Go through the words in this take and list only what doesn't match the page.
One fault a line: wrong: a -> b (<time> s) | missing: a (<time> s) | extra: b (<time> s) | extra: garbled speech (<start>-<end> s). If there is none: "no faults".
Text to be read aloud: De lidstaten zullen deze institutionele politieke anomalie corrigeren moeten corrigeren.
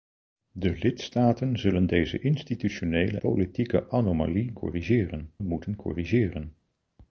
no faults